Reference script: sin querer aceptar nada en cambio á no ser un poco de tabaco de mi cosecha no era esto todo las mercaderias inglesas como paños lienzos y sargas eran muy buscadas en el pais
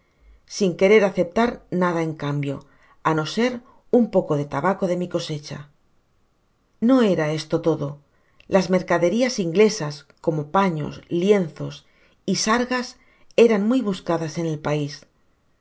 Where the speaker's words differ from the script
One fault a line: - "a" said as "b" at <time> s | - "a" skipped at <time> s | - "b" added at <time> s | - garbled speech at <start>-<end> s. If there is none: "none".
none